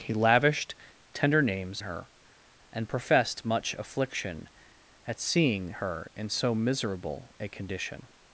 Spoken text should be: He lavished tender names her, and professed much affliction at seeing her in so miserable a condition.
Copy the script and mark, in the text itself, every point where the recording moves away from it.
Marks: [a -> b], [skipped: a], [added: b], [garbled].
He lavished tender names her, and professed much affliction at seeing her in so miserable a condition.